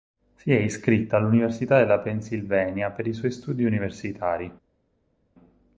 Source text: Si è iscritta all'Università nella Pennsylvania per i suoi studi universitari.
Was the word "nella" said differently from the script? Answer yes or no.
yes